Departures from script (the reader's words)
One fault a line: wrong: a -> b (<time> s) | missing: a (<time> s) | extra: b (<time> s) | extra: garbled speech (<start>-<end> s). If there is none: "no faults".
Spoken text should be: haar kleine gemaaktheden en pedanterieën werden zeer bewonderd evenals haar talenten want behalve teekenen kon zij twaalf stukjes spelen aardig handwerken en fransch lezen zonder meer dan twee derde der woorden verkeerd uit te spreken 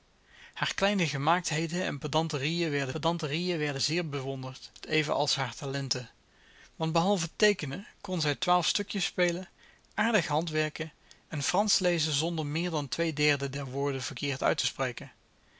extra: pedanterieën werden (2.9 s)